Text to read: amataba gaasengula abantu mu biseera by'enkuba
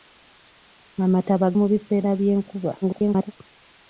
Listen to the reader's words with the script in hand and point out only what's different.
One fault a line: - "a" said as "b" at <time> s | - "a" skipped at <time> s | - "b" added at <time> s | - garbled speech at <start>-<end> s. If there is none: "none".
- "gaasengula abantu" skipped at 1.5 s
- garbled speech at 2.8-3.3 s